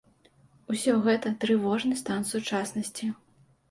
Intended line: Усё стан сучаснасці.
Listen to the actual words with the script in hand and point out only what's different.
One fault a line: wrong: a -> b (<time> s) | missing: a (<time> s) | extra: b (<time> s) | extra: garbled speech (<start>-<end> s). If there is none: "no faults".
extra: гэта трывожны (1.1 s)